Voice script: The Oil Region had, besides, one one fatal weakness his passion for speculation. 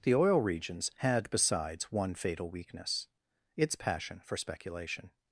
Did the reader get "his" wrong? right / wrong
wrong